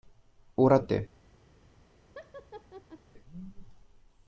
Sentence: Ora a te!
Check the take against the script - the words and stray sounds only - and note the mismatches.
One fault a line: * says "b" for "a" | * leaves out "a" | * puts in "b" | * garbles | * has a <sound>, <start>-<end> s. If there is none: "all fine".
* has a laugh, 2.2-3.0 s